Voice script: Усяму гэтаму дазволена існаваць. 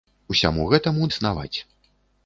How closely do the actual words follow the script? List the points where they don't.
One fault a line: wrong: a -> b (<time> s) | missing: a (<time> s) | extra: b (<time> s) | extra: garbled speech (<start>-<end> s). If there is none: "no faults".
missing: дазволена (1.1 s)